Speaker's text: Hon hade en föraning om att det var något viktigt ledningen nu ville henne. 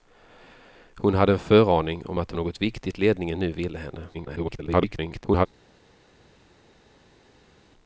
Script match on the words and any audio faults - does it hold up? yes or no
no